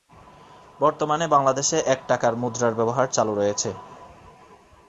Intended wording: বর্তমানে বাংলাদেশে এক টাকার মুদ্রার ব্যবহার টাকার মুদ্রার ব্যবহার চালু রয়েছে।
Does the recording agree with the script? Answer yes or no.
no